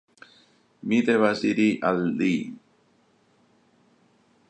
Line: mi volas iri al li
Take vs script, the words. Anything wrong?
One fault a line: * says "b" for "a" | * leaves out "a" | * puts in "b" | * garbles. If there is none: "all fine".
* says "devas" for "volas"